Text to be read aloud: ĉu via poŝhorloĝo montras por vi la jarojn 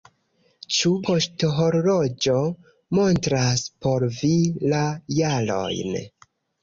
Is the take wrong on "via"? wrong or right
wrong